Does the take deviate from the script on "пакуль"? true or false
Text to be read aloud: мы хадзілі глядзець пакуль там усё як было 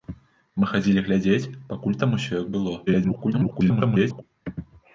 false